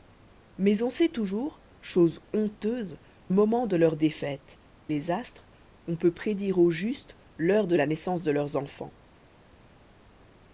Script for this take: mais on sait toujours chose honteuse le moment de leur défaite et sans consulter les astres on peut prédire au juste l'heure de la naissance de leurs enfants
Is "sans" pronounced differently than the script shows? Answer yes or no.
yes